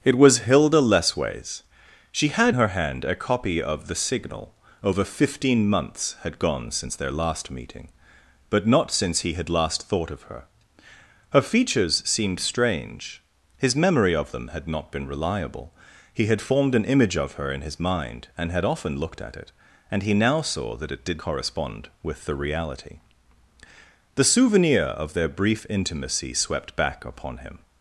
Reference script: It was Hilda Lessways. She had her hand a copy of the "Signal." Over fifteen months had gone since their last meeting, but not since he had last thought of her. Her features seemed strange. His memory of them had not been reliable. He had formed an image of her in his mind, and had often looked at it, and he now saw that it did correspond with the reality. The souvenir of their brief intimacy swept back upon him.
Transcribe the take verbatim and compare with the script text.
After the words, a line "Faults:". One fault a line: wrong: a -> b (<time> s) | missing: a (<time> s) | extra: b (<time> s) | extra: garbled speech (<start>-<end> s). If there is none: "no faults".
It was Hilda Lessways. She had her hand a copy of the "Signal." Over fifteen months had gone since their last meeting, but not since he had last thought of her. Her features seemed strange. His memory of them had not been reliable. He had formed an image of her in his mind, and had often looked at it, and he now saw that it did correspond with the reality. The souvenir of their brief intimacy swept back upon him.
Faults:
no faults